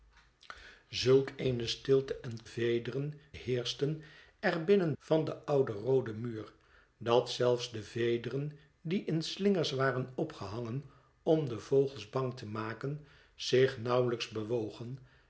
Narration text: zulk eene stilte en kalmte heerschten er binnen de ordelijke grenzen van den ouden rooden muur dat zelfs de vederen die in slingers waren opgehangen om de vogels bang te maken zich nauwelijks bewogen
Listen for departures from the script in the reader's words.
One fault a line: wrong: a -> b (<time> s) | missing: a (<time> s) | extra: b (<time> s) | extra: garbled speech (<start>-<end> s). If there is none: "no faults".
wrong: kalmte -> vederen (2.4 s)
missing: de ordelijke grenzen (4.9 s)